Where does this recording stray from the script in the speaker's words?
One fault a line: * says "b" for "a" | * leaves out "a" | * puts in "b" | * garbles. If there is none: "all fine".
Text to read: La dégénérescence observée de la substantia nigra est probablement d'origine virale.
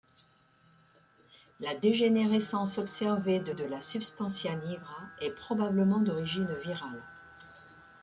* puts in "de"